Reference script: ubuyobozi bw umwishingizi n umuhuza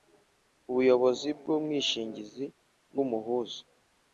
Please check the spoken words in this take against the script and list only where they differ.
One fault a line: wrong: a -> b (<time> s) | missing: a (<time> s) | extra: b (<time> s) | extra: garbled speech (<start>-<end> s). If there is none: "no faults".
no faults